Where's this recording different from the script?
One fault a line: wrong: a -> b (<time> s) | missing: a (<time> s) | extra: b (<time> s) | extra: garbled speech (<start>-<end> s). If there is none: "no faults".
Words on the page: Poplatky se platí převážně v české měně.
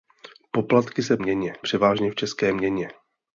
wrong: platí -> měně (1.2 s)